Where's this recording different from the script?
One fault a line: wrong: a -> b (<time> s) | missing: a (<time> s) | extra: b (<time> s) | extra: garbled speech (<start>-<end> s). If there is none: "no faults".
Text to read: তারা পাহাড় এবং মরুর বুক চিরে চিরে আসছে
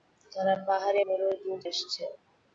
missing: এবং (1.0 s)
missing: চিরে চিরে (1.6 s)